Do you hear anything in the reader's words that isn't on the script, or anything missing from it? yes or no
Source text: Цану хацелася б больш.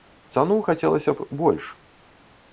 no